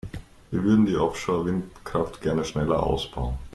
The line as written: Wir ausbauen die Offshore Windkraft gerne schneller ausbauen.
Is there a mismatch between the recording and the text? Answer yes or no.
yes